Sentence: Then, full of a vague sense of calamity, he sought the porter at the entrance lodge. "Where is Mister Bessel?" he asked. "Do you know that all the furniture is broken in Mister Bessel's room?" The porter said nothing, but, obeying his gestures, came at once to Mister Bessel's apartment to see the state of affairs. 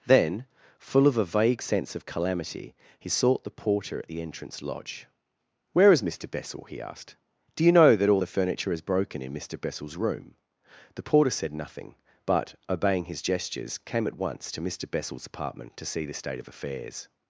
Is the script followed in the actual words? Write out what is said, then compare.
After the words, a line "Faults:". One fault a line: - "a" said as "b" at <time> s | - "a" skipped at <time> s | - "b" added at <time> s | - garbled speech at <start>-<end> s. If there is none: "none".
Then, full of a vague sense of calamity, he sought the porter at the entrance lodge. "Where is Mister Bessel?" he asked. "Do you know that all the furniture is broken in Mister Bessel's room?" The porter said nothing, but, obeying his gestures, came at once to Mister Bessel's apartment to see the state of affairs.
Faults:
none